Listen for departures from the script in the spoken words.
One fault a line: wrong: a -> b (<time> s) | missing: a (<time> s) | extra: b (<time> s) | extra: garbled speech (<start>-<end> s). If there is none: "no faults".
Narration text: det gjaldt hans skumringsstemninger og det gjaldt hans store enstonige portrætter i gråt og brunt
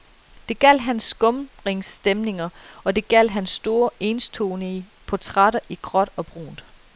no faults